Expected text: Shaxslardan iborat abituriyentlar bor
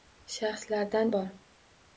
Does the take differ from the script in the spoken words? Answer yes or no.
yes